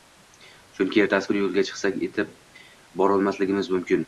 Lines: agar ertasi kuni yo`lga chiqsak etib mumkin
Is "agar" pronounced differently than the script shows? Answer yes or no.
yes